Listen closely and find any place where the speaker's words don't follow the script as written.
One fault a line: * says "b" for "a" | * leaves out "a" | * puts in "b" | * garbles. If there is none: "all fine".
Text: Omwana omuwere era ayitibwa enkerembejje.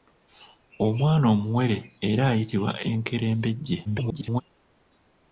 * garbles